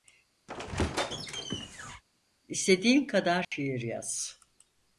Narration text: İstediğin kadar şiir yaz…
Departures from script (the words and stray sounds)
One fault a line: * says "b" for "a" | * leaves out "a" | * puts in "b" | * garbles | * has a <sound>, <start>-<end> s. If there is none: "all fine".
* has a squeak, 0.5-2.0 s
* has a dropout, 3.4-3.5 s